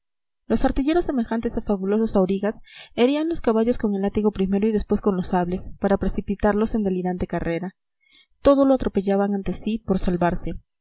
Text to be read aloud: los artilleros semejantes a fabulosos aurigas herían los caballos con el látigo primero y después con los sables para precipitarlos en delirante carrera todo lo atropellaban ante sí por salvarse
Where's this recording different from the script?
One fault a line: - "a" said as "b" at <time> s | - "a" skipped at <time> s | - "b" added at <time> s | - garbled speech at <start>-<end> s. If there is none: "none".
none